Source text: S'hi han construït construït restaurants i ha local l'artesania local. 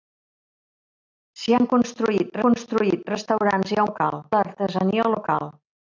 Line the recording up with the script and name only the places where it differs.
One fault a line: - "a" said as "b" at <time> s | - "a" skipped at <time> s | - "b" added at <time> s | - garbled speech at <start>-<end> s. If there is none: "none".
none